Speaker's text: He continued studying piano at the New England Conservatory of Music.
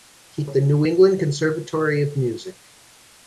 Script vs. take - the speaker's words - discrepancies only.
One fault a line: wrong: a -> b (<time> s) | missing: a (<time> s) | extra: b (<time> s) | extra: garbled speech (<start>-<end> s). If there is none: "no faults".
missing: continued studying piano (0.5 s)